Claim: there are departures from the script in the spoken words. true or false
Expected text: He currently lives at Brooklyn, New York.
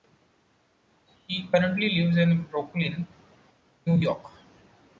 true